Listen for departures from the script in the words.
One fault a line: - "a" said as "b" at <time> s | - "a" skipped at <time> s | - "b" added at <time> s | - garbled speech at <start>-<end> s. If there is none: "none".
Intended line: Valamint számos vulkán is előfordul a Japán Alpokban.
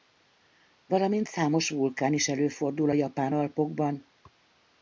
none